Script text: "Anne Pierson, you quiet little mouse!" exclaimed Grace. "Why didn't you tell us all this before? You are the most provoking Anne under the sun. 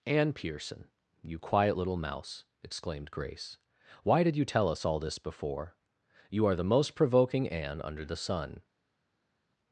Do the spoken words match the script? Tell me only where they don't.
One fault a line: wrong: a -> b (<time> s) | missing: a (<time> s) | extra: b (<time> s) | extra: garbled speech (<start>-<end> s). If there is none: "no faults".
wrong: didn't -> did (4.2 s)